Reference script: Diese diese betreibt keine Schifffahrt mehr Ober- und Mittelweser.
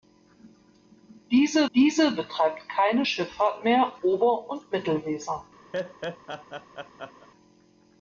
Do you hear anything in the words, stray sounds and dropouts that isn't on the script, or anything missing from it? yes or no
yes